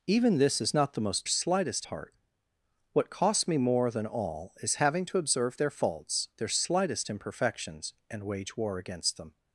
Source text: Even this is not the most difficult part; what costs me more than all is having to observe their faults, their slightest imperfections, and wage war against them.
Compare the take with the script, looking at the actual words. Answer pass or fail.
fail